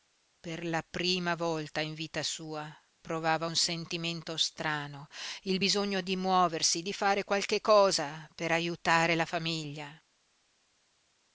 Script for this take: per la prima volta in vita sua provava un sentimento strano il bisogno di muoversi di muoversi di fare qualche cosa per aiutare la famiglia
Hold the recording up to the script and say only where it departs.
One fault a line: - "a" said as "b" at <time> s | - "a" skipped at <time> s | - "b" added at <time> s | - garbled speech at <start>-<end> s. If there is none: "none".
- "muoversi di" skipped at 6.9 s